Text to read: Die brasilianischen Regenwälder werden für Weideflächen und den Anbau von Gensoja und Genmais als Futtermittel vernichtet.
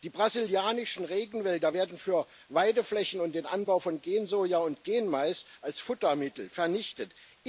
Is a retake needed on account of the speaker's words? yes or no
no